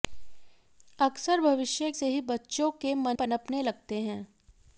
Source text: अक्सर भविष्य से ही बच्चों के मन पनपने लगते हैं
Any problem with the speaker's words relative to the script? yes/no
no